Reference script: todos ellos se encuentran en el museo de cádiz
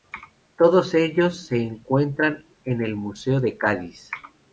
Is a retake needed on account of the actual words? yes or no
no